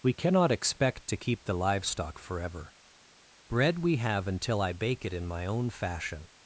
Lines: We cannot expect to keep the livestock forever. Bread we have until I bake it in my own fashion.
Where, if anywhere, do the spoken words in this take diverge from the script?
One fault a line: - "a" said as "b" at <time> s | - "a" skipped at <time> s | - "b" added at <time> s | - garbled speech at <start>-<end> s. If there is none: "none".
none